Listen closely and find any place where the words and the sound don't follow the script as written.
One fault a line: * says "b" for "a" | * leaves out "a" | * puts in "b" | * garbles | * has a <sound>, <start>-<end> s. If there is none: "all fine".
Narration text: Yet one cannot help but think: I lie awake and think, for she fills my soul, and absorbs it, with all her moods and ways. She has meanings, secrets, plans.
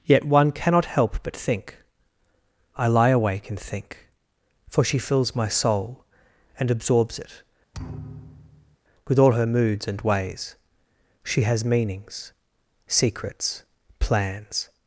* has a thud, 7.7-8.8 s